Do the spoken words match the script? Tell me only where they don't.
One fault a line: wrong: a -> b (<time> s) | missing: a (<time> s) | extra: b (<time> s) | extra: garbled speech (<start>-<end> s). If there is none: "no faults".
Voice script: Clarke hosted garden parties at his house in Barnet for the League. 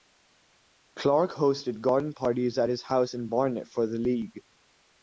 no faults